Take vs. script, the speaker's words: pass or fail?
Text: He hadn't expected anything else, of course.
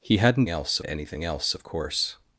fail